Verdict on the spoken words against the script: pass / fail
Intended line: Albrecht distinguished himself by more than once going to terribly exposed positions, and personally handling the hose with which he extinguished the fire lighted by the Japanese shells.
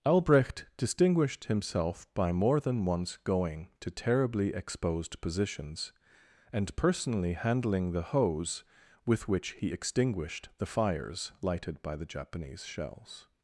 fail